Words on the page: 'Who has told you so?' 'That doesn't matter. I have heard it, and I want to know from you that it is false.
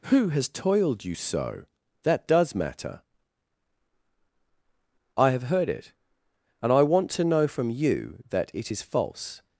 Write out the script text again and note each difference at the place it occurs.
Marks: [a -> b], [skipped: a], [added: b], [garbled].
'Who has [told -> toiled] you so?' 'That [doesn't -> does] matter. I have heard it, and I want to know from you that it is false.